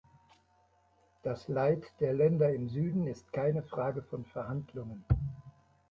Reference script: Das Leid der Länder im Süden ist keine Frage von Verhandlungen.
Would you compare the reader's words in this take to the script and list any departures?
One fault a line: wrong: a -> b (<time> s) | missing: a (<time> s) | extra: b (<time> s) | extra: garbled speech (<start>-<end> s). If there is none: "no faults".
no faults